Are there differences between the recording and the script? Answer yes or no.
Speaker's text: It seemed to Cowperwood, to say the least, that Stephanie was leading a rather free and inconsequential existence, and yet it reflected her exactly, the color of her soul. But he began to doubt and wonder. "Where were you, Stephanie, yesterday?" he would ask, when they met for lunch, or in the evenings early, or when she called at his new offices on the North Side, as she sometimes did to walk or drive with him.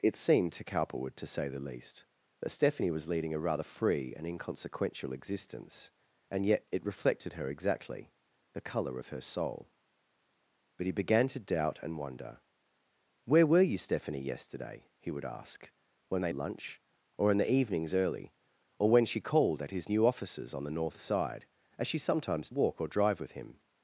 yes